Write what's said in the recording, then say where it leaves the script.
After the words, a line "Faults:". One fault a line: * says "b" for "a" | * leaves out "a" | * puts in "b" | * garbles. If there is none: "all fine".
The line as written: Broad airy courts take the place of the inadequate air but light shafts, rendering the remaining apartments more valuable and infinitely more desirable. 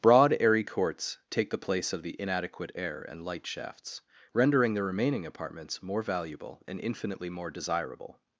Broad airy courts take the place of the inadequate air and light shafts, rendering the remaining apartments more valuable and infinitely more desirable.
Faults:
* says "and" for "but"